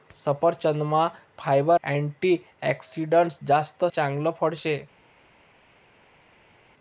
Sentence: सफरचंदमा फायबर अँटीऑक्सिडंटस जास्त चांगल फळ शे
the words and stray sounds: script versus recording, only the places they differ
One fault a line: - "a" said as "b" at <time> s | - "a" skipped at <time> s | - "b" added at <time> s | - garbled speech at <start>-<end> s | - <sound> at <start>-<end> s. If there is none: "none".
none